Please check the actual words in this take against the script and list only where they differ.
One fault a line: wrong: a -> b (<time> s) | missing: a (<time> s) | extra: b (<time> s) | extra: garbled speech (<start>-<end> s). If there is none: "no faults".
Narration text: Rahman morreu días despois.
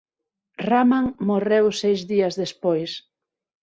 extra: seis (1.8 s)